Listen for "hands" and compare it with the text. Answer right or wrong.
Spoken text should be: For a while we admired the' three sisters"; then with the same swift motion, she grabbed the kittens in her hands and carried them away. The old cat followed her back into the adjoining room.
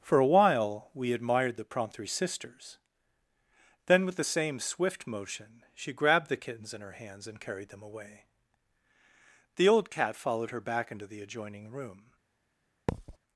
right